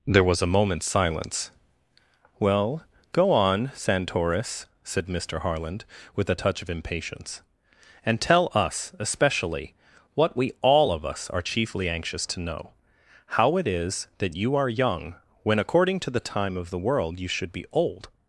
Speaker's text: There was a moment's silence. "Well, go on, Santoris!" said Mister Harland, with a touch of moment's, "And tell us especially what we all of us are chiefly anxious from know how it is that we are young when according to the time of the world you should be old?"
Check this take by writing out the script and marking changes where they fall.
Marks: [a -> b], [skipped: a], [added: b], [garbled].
There was a moment's silence. "Well, go on, Santoris!" said Mister Harland, with a touch of [moment's, -> impatience] "And tell us especially what we all of us are chiefly anxious [from -> to] know how it is that [we -> you] are young when according to the time of the world you should be old?"